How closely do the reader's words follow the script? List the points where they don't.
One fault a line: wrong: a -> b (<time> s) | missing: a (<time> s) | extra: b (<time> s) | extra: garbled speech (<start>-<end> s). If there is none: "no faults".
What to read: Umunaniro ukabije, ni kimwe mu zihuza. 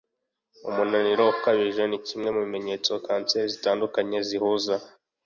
extra: bimenyetso kanseri zitandukanye (2.5 s)